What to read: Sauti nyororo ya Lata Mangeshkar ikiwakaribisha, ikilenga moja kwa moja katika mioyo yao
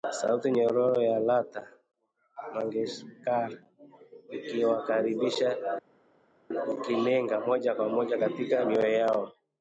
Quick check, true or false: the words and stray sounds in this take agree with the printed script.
true